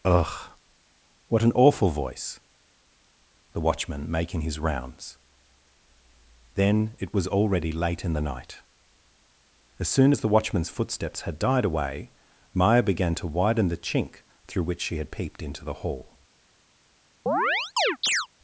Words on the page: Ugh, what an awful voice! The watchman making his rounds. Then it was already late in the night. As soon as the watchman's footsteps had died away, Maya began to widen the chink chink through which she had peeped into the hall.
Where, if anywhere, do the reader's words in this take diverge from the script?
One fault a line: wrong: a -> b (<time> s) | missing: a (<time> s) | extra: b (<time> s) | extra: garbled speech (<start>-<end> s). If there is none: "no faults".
missing: chink (14.2 s)